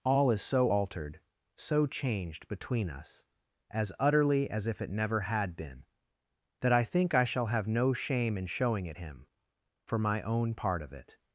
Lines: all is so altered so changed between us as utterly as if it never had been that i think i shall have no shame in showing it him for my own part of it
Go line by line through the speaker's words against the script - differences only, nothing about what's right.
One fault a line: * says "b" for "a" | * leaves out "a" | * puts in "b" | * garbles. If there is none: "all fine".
all fine